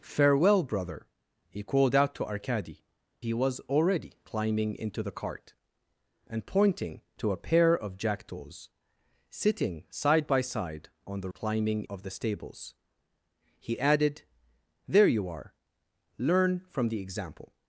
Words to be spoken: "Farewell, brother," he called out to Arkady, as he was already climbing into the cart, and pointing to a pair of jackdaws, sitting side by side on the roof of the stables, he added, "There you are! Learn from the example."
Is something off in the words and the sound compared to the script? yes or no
yes